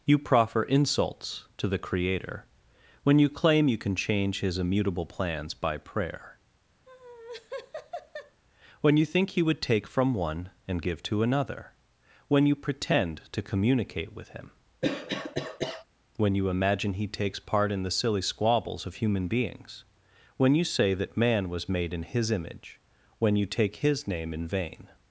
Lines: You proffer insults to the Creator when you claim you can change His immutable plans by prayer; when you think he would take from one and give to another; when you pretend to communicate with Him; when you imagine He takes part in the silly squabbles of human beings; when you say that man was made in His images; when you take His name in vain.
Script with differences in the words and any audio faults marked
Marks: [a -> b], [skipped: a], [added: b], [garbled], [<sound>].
You proffer insults to the Creator when you claim you can change His immutable plans by prayer; [laugh] when you think he would take from one and give to another; when you pretend to communicate with Him; [cough] when you imagine He takes part in the silly squabbles of human beings; when you say that man was made in His [images; -> image] when you take His name in vain.